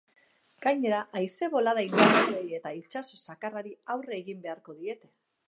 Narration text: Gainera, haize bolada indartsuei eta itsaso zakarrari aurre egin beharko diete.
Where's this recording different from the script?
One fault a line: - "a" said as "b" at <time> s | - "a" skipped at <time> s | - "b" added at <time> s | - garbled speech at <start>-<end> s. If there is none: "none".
none